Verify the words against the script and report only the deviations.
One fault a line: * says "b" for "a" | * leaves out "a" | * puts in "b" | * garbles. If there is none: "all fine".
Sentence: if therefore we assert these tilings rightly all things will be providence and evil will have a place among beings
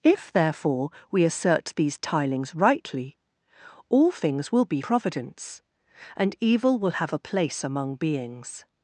all fine